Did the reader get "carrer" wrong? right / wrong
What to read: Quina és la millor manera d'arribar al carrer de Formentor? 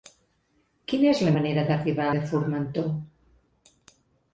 wrong